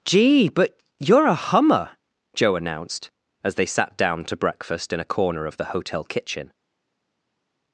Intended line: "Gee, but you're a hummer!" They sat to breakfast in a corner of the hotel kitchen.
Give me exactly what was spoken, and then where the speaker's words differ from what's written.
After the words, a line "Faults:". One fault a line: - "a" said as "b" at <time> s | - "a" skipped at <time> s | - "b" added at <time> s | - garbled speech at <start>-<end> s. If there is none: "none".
"Gee, but you're a hummer!" Joe announced, as they sat down to breakfast in a corner of the hotel kitchen.
Faults:
- "Joe announced as" added at 2.3 s
- "down" added at 4.0 s